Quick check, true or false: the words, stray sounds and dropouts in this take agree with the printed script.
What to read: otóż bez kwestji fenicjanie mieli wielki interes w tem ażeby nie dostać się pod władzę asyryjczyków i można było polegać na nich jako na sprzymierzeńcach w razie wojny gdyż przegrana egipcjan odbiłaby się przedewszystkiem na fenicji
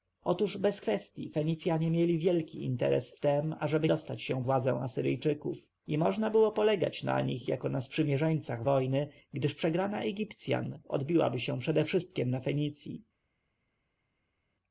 false